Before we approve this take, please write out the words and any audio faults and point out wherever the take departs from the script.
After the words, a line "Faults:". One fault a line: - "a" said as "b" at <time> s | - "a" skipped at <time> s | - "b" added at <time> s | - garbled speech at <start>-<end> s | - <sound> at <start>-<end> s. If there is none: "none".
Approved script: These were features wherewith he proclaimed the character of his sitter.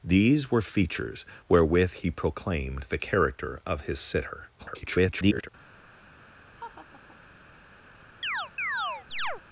These were features wherewith he proclaimed the character of his sitter. [garbled]
Faults:
- garbled speech at 4.6-5.5 s
- laugh at 6.6-7.2 s
- chirp at 8.2-9.4 s